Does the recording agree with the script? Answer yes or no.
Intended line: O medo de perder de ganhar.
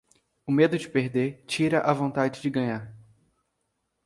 no